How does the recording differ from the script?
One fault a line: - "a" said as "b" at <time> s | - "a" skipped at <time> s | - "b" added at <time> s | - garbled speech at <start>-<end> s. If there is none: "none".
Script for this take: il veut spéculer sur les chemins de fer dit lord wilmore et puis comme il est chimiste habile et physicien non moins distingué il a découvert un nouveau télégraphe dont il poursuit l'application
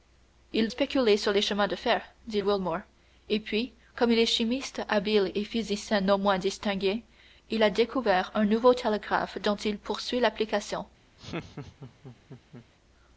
- "veut" skipped at 0.7 s
- "lord" skipped at 2.4 s